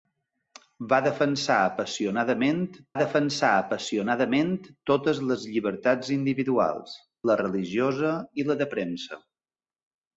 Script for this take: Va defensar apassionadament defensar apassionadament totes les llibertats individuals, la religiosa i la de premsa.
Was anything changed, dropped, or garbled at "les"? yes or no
no